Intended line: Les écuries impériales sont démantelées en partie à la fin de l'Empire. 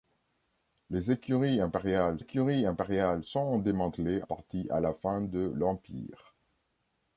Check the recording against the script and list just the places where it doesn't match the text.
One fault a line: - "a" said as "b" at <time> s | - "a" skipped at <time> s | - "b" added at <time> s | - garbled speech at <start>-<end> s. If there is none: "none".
- "écuries impériales" added at 2.2 s
- "en" skipped at 4.2 s